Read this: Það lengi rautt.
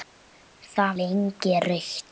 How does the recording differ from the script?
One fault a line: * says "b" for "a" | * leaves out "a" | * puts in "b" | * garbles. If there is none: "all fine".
all fine